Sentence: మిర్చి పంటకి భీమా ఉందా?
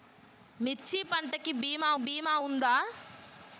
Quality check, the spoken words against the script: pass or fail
fail